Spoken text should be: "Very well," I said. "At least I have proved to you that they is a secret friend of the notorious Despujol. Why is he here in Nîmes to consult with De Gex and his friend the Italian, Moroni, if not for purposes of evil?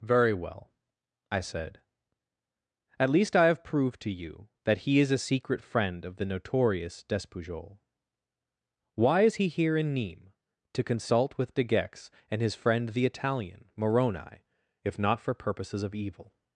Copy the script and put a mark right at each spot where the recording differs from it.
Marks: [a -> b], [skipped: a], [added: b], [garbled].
"Very well," I said. "At least I have proved to you that [they -> he] is a secret friend of the notorious Despujol. Why is he here in Nîmes to consult with De Gex and his friend the Italian, Moroni, if not for purposes of evil?